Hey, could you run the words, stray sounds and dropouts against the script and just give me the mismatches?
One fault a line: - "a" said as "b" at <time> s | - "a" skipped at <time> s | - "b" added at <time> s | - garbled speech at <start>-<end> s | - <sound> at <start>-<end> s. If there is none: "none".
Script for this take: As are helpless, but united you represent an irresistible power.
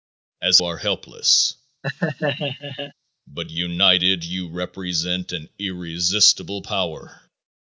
- laugh at 1.8-2.9 s